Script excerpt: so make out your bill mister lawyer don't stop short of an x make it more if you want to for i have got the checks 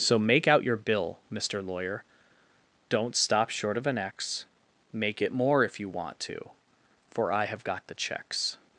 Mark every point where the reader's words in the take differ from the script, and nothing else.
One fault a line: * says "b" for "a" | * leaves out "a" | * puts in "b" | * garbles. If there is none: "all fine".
all fine